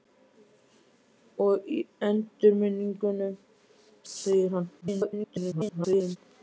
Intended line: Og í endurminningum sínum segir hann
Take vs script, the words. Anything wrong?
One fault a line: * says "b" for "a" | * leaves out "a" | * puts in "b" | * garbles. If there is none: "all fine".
* leaves out "sínum"
* garbles